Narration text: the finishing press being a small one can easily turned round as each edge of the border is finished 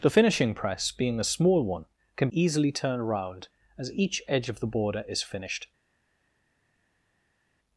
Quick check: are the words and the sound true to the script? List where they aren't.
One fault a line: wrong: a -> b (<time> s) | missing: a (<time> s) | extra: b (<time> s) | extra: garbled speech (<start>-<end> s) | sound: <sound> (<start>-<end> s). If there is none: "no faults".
no faults